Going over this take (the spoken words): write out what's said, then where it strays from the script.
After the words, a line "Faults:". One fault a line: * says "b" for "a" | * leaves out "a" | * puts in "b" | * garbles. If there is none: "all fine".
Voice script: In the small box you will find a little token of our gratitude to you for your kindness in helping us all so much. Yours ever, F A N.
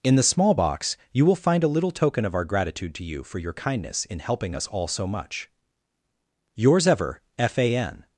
In the small box you will find a little token of our gratitude to you for your kindness in helping us all so much. Yours ever, F A N.
Faults:
all fine